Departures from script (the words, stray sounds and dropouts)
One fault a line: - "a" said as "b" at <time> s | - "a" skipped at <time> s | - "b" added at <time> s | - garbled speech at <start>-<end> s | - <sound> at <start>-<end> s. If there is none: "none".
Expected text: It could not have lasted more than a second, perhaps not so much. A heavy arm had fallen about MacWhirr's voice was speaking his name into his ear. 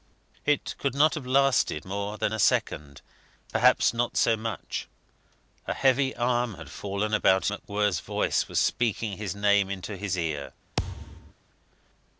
- thud at 10.8-11.3 s